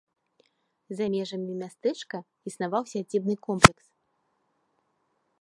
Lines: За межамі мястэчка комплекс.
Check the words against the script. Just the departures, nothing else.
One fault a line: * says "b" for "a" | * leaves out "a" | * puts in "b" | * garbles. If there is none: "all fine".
* puts in "існаваў сядзібны"